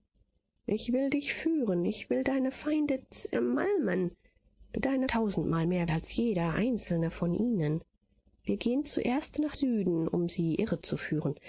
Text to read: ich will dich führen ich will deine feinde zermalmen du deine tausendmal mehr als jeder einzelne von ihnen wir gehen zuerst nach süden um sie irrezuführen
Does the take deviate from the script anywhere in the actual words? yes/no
no